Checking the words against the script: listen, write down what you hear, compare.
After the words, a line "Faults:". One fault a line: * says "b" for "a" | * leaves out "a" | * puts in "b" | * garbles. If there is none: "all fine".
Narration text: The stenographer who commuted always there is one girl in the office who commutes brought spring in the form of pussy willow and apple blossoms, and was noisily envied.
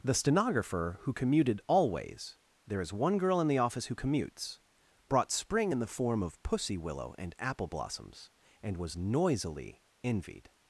The stenographer who commuted always there is one girl in the office who commutes brought spring in the form of pussy willow and apple blossoms, and was noisily envied.
Faults:
all fine